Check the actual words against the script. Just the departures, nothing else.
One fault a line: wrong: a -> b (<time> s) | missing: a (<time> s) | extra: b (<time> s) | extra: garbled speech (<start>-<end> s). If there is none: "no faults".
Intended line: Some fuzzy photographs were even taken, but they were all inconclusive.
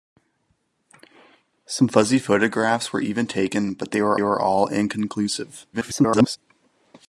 extra: were (4.2 s)
extra: garbled speech (5.7-6.4 s)